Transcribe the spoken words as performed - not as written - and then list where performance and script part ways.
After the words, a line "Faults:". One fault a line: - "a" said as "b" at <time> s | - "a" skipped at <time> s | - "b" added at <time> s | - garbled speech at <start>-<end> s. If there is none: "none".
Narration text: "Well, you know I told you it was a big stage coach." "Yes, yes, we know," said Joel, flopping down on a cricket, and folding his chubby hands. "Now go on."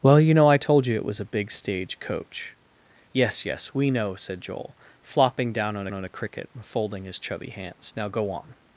"Well, you know I told you it was a big stage coach." "Yes, yes, we know," said Joel, flopping down on on a cricket, and folding his chubby hands. "Now go on."
Faults:
- "on" added at 5.9 s